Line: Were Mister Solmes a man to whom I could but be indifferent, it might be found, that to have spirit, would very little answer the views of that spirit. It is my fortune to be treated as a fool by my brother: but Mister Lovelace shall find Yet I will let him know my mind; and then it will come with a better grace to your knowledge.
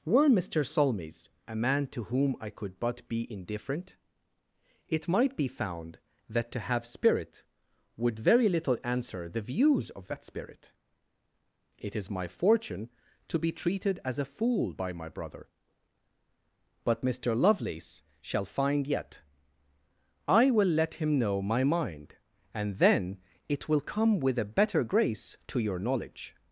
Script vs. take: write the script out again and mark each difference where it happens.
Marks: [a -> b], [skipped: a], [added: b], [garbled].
Were Mister Solmes a man to whom I could but be indifferent, it might be found, that to have spirit, would very little answer the views of that spirit. It is my fortune to be treated as a fool by my brother: but Mister Lovelace shall find Yet I will let him know my mind; and then it will come with a better grace to your knowledge.